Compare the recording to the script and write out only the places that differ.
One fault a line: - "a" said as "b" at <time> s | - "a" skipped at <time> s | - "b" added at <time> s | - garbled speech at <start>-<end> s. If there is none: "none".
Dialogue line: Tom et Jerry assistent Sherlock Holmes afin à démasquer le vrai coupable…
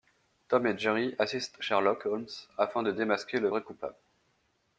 - "à" said as "de" at 2.8 s